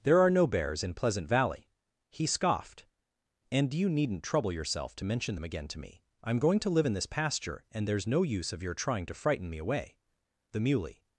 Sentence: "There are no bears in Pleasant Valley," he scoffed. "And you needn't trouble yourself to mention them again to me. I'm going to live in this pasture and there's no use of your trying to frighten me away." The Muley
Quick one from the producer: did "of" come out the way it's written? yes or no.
yes